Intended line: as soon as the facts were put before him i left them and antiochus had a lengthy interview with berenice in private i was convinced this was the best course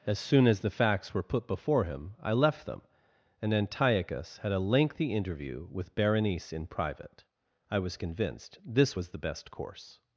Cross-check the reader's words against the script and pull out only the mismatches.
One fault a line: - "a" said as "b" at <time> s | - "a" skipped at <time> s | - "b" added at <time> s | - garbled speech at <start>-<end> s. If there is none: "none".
none